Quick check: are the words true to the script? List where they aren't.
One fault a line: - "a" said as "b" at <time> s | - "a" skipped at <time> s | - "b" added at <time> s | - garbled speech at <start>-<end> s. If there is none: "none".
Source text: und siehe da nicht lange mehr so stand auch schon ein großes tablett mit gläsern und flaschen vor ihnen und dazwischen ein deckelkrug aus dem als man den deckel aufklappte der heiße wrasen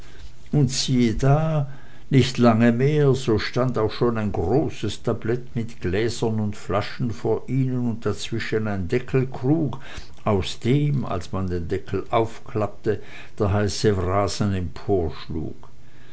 none